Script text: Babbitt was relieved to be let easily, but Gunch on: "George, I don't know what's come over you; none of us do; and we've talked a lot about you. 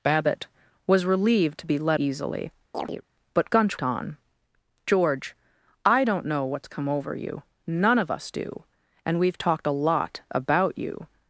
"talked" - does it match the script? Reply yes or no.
yes